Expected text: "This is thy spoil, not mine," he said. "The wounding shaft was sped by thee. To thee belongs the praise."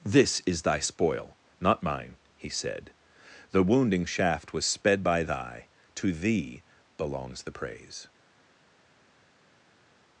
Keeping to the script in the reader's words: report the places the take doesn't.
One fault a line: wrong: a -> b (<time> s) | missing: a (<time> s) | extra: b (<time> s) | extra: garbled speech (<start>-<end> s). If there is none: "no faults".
wrong: thee -> thy (5.2 s)